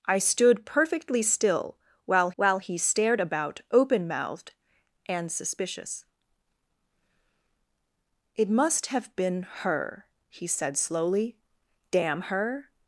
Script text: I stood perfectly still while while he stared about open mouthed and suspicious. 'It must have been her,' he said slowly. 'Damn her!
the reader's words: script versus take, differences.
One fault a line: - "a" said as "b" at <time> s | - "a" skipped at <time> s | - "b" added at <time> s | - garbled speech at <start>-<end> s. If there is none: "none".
none